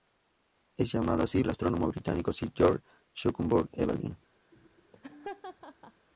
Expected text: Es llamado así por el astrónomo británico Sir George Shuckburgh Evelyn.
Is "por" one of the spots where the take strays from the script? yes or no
yes